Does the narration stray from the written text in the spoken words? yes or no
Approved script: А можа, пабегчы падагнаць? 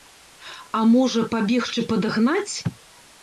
no